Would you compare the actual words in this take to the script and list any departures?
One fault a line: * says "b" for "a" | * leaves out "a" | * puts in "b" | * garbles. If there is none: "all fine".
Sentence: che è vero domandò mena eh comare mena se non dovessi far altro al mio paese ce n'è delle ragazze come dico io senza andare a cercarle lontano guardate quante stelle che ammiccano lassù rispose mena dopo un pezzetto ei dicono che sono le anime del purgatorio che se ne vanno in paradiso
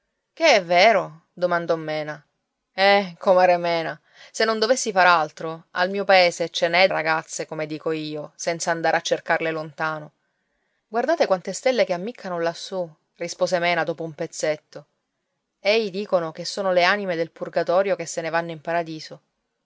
* leaves out "delle"